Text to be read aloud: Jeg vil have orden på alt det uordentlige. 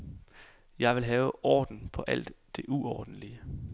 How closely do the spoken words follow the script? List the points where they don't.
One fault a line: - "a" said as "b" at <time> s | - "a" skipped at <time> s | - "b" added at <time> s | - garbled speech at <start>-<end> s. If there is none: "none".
none